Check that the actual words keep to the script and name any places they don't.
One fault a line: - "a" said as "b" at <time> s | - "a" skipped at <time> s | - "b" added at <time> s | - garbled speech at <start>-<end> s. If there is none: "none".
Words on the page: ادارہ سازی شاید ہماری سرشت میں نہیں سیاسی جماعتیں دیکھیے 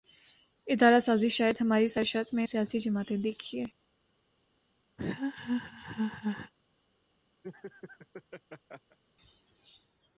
- "نہیں" skipped at 2.5 s